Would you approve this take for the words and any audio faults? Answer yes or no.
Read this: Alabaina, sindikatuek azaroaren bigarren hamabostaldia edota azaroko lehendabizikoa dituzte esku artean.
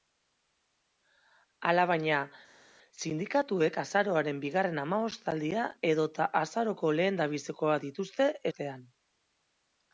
no